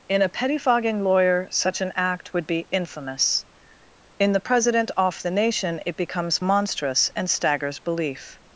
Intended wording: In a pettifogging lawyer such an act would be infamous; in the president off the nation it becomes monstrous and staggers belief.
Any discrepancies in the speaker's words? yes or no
no